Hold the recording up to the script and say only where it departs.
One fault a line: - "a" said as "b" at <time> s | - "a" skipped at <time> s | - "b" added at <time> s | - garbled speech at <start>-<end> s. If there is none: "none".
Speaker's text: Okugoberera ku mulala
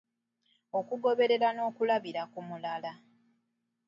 - "n'okulabira" added at 1.5 s